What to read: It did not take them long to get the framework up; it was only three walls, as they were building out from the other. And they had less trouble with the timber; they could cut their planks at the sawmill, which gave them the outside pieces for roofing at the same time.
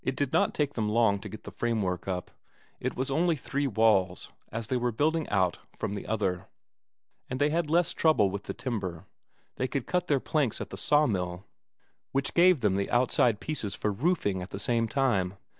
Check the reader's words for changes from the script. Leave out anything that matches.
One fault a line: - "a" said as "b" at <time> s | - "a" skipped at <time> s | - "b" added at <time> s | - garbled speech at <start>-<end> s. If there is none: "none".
none